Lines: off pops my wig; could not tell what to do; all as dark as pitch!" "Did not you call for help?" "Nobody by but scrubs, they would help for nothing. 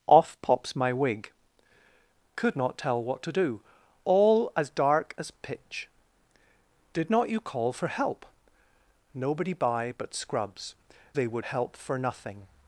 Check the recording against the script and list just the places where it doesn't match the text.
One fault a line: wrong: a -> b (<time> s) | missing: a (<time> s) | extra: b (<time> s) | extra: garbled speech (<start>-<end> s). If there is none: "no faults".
no faults